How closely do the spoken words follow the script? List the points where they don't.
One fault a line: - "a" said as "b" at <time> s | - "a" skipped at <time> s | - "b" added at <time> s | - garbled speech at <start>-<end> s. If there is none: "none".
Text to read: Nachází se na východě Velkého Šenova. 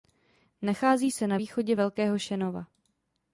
none